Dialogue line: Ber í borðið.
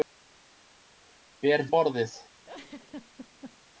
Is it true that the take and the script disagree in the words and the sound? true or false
true